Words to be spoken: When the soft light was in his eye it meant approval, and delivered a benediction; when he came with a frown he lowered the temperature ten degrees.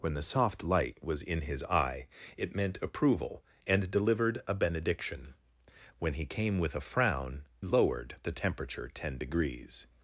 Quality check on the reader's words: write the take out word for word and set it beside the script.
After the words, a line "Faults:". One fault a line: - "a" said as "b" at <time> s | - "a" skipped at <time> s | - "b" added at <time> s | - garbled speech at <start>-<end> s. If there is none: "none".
When the soft light was in his eye it meant approval, and delivered a benediction; when he came with a frown lowered the temperature ten degrees.
Faults:
- "he" skipped at 7.5 s